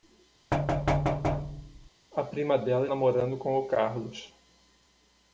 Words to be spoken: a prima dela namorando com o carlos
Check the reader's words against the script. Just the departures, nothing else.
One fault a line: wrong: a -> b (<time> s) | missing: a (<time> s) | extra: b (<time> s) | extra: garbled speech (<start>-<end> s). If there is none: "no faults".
no faults